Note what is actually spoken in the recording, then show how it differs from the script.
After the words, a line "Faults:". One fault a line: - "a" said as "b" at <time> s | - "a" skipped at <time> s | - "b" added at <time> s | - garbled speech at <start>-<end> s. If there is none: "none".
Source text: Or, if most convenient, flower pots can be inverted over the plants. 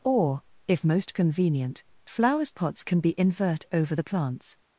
Or, if most convenient, flowers pots can be invert over the plants.
Faults:
- "flower" said as "flowers" at 2.1 s
- "inverted" said as "invert" at 3.2 s